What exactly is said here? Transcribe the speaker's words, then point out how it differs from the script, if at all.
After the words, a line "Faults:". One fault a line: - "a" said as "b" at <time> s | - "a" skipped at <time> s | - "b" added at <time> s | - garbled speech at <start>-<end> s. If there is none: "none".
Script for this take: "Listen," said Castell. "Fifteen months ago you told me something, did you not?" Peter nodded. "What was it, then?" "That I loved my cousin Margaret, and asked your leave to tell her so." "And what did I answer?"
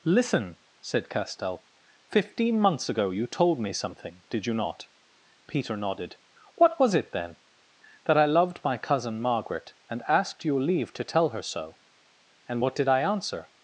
"Listen," said Castell. "Fifteen months ago you told me something, did you not?" Peter nodded. "What was it, then?" "That I loved my cousin Margaret, and asked your leave to tell her so." "And what did I answer?"
Faults:
none